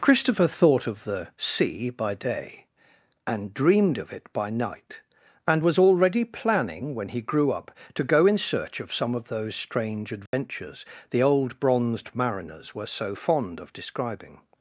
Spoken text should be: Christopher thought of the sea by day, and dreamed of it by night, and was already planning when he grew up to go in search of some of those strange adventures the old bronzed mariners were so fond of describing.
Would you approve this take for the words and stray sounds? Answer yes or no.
no